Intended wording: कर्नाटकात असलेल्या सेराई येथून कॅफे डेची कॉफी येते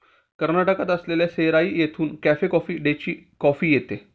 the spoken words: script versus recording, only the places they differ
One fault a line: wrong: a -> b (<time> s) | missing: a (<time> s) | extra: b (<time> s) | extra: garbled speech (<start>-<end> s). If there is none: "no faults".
extra: कॉफी (2.4 s)